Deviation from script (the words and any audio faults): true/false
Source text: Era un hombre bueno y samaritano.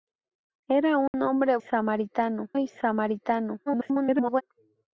true